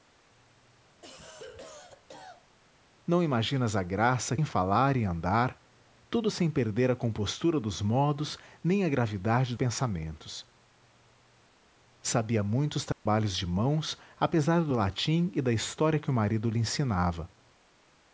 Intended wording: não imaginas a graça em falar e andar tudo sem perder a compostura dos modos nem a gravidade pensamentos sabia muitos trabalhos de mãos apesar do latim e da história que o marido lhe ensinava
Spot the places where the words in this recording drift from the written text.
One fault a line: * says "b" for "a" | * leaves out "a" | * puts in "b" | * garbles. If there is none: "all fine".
all fine